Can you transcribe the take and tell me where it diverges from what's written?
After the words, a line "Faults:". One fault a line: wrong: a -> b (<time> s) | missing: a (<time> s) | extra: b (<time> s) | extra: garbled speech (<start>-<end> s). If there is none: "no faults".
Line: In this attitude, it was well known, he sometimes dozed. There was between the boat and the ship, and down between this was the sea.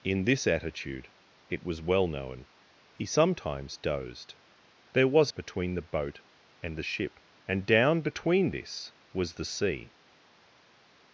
In this attitude, it was well known, he sometimes dozed. There was between the boat and the ship, and down between this was the sea.
Faults:
no faults